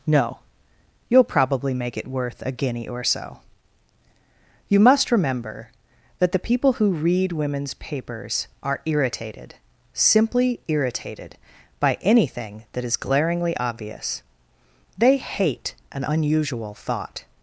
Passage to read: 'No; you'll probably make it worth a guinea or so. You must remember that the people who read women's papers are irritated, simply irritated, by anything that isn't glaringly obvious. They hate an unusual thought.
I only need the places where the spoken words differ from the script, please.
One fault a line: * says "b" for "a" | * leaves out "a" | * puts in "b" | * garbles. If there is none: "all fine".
* says "is" for "isn't"